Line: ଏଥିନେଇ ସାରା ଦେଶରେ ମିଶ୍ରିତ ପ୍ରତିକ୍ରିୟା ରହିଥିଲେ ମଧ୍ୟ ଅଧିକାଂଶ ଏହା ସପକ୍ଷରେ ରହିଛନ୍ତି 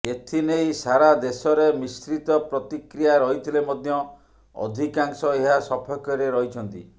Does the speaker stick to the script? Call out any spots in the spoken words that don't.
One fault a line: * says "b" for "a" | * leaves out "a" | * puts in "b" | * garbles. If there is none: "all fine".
all fine